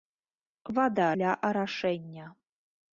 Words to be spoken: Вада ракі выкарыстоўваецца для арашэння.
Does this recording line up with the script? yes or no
no